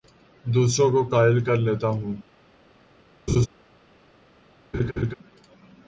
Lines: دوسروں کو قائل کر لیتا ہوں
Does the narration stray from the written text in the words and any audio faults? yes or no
yes